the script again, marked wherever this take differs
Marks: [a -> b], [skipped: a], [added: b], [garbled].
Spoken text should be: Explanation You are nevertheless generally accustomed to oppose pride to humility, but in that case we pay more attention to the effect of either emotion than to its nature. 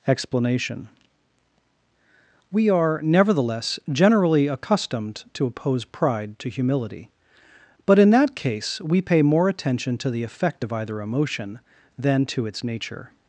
Explanation [You -> We] are nevertheless generally accustomed to oppose pride to humility, but in that case we pay more attention to the effect of either emotion than to its nature.